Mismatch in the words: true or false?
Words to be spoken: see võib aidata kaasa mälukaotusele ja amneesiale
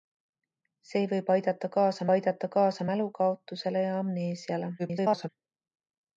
true